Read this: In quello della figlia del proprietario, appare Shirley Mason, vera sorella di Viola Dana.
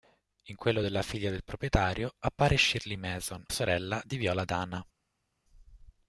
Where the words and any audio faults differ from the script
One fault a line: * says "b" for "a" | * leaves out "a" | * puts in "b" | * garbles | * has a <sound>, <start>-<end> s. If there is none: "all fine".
* leaves out "vera"